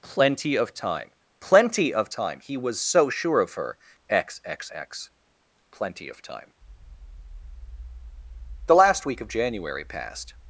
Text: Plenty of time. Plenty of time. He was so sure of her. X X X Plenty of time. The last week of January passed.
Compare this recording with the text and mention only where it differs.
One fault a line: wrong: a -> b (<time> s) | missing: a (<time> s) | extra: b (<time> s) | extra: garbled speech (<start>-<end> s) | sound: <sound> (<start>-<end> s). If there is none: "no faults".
no faults